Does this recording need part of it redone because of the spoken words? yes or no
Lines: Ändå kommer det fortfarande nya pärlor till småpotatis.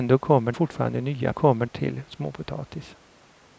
yes